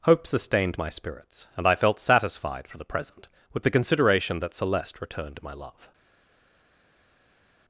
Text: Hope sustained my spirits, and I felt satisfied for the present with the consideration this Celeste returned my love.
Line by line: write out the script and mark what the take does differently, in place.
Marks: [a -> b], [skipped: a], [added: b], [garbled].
Hope sustained my spirits, and I felt satisfied for the present with the consideration [this -> that] Celeste returned my love.